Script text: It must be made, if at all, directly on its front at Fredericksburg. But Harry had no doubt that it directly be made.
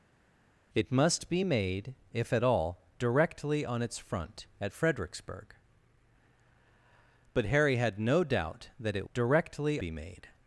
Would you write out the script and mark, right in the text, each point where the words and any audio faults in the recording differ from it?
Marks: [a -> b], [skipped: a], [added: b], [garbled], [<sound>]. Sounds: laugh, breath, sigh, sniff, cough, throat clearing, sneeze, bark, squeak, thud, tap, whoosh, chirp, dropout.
It must be made, if at all, directly on its front at Fredericksburg. But Harry had no doubt that it directly be made.